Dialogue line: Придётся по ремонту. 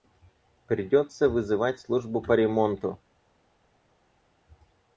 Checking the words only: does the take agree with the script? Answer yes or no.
no